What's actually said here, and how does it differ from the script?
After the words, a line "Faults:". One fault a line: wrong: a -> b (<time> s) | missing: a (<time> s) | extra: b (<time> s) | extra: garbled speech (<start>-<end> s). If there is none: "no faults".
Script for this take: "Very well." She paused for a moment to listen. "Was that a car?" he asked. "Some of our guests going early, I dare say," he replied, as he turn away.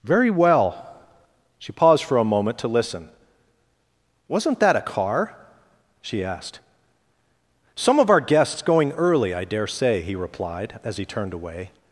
"Very well." She paused for a moment to listen. "Wasn't that a car?" she asked. "Some of our guests going early, I dare say," he replied, as he turned away.
Faults:
wrong: Was -> Wasn't (4.3 s)
wrong: he -> she (6.0 s)
wrong: turn -> turned (11.0 s)